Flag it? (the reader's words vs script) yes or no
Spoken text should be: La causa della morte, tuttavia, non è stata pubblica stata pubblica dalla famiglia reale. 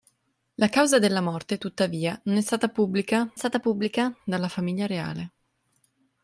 no